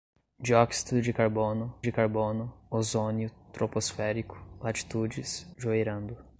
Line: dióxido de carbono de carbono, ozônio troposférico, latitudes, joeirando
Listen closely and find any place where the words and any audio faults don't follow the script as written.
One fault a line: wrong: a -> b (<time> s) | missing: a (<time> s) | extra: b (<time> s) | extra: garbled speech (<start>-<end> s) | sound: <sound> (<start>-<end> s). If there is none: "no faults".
no faults